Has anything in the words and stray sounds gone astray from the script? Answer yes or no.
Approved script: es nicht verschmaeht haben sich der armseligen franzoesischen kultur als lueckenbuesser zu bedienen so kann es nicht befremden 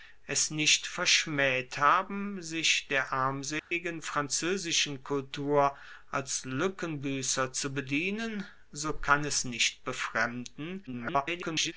yes